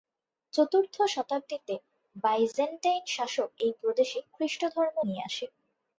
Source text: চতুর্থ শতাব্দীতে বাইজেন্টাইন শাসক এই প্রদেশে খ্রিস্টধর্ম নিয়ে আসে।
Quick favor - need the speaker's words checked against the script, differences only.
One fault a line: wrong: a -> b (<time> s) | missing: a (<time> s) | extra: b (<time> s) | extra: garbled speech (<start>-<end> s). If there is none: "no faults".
no faults